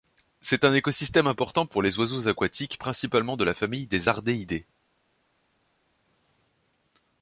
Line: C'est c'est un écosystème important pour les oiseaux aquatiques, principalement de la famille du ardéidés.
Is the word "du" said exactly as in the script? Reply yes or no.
no